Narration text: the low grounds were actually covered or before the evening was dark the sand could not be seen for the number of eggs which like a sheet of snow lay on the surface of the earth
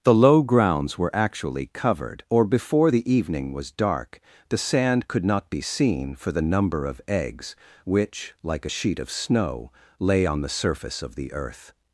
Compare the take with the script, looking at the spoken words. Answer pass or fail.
pass